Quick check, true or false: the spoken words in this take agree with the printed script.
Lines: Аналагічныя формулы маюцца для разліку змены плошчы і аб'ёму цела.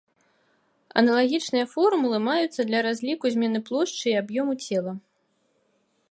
true